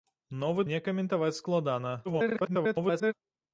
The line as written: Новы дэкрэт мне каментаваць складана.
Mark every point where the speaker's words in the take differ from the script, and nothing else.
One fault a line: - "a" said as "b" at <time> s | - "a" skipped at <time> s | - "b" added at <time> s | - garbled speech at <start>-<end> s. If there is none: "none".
- "дэкрэт" skipped at 0.7 s
- garbled speech at 2.0-3.1 s